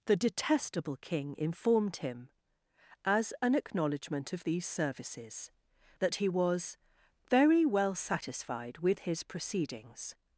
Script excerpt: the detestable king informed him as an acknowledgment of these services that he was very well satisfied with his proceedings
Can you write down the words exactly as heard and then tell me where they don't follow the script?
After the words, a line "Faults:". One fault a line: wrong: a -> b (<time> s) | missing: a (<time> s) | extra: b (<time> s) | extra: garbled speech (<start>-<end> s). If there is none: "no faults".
the detestable king informed him as an acknowledgment of these services that he was very well satisfied with his proceedings
Faults:
no faults